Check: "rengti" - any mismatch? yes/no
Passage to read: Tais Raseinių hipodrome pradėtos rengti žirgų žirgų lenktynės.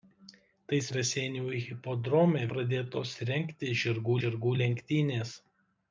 no